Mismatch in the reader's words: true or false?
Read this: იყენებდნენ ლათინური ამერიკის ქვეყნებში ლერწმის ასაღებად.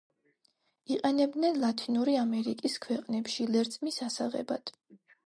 false